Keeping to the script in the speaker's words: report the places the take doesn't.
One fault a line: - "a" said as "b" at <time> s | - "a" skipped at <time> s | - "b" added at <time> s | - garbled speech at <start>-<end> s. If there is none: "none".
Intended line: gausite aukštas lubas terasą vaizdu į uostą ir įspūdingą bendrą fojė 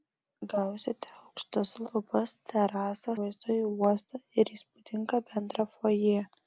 none